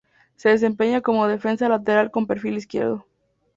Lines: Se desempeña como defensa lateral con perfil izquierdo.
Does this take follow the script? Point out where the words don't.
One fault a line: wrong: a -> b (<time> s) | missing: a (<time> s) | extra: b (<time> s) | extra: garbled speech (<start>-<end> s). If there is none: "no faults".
no faults